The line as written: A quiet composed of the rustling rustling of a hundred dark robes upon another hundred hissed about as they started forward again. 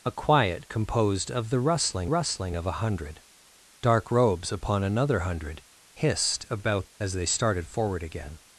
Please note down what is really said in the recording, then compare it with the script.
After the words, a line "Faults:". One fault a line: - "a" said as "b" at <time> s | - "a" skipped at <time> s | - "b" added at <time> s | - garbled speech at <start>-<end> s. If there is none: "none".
A quiet composed of the rustling rustling of a hundred dark robes upon another hundred hissed about as they started forward again.
Faults:
none